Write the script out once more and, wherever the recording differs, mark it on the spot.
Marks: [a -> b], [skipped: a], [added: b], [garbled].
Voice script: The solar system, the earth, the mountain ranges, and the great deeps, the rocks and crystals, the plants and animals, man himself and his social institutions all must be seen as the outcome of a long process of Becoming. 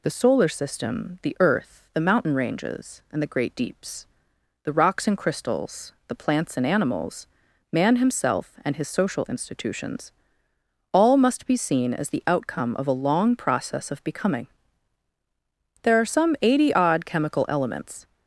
The solar system, the earth, the mountain ranges, and the great deeps, the rocks and crystals, the plants and animals, man himself and his social institutions all must be seen as the outcome of a long process of Becoming. [added: There are some eighty odd chemical elements]